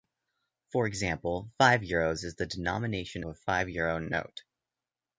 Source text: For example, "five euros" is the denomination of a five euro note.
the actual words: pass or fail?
fail